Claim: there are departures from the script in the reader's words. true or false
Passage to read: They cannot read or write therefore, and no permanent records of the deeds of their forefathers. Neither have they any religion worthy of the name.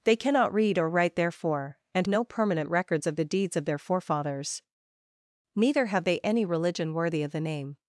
false